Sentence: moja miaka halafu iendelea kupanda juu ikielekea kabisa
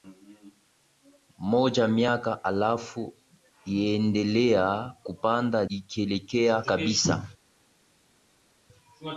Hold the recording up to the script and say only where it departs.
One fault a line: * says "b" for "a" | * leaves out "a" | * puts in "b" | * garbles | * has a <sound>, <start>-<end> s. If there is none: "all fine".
* leaves out "juu"